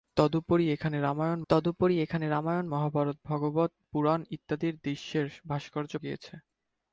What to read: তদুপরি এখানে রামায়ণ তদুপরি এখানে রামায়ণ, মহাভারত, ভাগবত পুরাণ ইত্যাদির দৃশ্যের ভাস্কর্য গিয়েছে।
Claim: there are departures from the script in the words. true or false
false